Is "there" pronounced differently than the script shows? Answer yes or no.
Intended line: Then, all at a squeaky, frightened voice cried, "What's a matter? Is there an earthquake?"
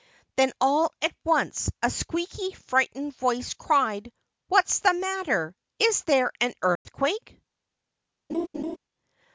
no